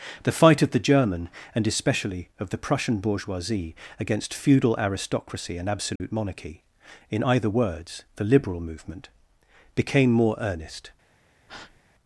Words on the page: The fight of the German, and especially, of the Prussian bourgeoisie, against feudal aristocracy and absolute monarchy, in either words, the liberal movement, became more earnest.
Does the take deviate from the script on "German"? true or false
false